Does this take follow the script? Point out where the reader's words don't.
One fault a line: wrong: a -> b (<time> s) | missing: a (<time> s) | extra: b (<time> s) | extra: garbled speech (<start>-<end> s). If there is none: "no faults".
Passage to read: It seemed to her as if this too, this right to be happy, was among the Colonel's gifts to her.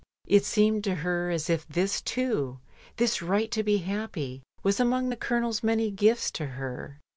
extra: many (5.6 s)